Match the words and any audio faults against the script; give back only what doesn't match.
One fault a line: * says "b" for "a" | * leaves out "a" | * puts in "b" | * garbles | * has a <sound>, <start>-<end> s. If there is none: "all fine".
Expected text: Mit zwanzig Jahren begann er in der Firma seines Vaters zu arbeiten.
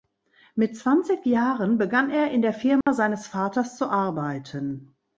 * has a dropout, 2.8-2.9 s